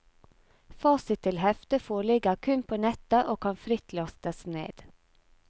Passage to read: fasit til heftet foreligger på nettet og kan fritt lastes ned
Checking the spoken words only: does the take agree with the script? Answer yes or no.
no